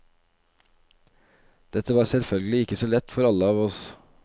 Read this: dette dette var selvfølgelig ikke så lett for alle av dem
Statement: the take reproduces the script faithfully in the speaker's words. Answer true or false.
false